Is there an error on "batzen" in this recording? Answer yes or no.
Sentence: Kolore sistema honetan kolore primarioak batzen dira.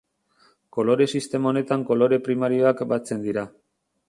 no